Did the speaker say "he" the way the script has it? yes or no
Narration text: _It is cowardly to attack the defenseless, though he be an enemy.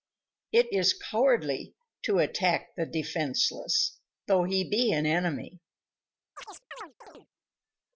yes